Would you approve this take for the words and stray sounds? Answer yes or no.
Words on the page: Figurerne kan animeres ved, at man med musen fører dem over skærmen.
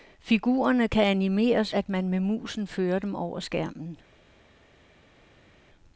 no